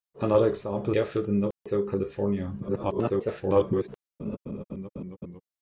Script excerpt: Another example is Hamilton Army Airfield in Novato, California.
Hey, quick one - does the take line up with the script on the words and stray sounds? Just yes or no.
no